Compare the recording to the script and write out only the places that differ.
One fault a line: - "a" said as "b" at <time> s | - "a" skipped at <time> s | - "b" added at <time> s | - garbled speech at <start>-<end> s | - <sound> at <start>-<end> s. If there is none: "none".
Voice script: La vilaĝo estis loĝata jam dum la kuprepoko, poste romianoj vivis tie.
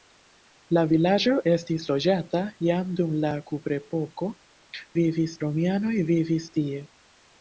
- "poste" said as "vivis" at 5.0 s